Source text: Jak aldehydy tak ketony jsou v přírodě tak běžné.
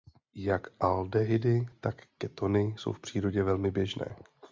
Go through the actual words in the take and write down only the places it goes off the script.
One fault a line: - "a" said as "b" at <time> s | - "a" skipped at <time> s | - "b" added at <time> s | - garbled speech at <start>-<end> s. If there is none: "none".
- "tak" said as "velmi" at 3.4 s